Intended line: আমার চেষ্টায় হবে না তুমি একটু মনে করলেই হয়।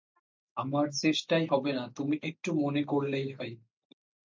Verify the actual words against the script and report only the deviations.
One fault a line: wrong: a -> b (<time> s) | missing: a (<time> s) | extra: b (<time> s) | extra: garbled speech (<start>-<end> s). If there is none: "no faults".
no faults